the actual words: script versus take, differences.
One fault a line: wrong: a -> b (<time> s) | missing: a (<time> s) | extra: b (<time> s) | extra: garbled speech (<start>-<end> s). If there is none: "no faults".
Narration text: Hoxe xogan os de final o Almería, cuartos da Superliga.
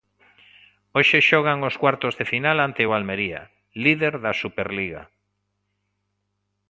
extra: cuartos (1.8 s)
extra: ante (2.7 s)
wrong: cuartos -> líder (3.8 s)